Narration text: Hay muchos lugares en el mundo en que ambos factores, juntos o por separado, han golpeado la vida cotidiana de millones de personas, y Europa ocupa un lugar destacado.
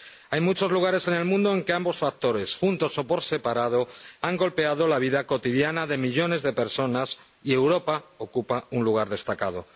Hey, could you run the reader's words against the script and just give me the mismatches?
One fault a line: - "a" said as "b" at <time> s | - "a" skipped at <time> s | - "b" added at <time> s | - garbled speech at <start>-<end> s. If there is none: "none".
none